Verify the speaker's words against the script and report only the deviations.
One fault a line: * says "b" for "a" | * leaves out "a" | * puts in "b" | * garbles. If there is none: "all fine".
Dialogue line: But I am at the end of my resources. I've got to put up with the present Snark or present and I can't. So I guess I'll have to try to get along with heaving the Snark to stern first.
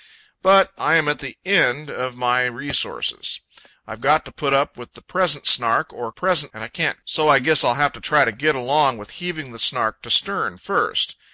all fine